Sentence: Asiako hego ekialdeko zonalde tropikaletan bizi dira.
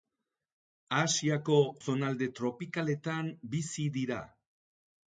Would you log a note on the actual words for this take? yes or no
yes